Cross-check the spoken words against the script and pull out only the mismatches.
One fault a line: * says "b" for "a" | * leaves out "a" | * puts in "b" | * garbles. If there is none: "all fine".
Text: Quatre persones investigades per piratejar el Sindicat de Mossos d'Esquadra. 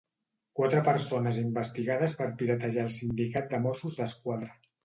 all fine